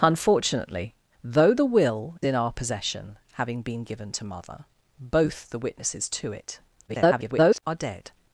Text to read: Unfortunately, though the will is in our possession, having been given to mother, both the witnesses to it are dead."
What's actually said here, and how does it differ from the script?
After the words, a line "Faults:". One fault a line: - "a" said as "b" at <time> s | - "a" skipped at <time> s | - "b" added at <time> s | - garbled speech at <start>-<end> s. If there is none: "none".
Unfortunately, though the will in our possession, having been given to mother, both the witnesses to it [garbled] are dead."
Faults:
- "is" skipped at 2.2 s
- garbled speech at 6.9-7.6 s